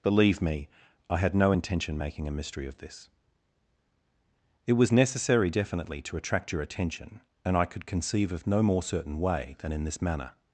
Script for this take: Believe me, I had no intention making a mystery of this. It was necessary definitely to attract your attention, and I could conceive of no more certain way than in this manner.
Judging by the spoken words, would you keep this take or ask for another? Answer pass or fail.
pass